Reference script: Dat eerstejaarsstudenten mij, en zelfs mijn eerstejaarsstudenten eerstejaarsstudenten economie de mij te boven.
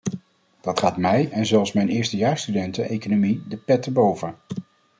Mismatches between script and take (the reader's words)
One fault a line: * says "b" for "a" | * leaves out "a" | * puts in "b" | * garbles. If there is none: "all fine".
* says "gaat" for "eerstejaarsstudenten"
* leaves out "eerstejaarsstudenten"
* says "pet" for "mij"